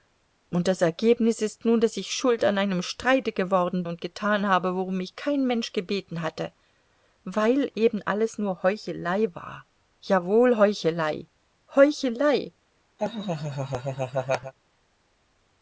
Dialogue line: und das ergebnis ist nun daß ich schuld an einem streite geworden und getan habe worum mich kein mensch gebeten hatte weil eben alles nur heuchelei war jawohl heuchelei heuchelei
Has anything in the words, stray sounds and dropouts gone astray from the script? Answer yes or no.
yes